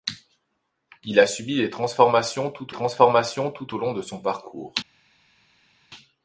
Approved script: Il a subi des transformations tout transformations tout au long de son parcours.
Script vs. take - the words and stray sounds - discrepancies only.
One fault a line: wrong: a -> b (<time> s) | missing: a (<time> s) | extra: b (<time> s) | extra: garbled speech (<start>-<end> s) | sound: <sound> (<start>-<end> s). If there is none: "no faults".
no faults